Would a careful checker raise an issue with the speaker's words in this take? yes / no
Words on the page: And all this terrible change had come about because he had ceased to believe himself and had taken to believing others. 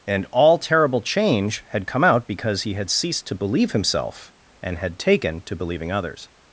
yes